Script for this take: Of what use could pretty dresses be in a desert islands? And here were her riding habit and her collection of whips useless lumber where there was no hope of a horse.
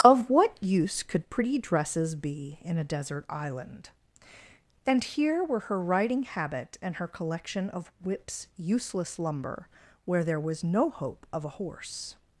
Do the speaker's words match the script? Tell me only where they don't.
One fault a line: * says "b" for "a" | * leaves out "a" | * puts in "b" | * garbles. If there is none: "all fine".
* says "island" for "islands"